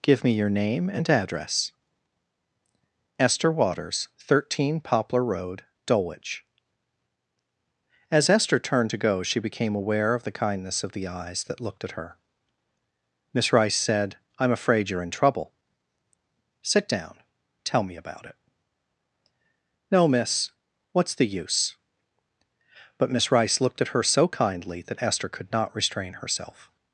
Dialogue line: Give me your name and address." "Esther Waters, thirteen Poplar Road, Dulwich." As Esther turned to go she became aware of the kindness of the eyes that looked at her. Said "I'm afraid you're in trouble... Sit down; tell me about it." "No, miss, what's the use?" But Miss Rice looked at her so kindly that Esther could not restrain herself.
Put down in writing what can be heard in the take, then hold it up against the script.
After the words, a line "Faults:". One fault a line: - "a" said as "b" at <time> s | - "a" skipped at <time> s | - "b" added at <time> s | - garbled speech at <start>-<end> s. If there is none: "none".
Give me your name and address." "Esther Waters, thirteen Poplar Road, Dulwich." As Esther turned to go she became aware of the kindness of the eyes that looked at her. Miss Rice said "I'm afraid you're in trouble... Sit down; tell me about it." "No, miss, what's the use?" But Miss Rice looked at her so kindly that Esther could not restrain herself.
Faults:
- "Miss Rice" added at 13.3 s